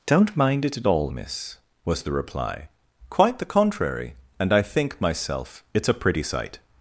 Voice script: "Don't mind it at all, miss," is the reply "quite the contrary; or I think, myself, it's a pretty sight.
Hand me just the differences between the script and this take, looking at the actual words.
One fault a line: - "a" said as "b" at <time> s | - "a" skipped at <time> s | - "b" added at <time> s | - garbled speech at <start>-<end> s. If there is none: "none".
- "is" said as "was" at 1.8 s
- "or" said as "and" at 4.4 s